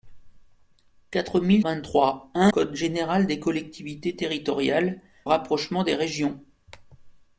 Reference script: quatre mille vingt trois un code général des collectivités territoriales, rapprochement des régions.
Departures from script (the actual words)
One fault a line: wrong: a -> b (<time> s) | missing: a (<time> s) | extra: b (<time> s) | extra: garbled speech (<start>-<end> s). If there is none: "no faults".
no faults